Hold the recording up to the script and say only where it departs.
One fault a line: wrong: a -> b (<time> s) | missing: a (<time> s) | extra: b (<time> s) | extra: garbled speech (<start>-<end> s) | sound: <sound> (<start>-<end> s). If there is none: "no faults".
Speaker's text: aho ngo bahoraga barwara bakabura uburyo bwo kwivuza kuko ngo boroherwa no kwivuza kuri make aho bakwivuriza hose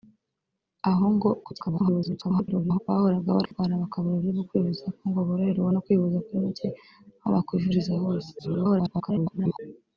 extra: garbled speech (1.4-2.8 s)
sound: dropout (3.5-3.5 s)
extra: garbled speech (8.4-9.6 s)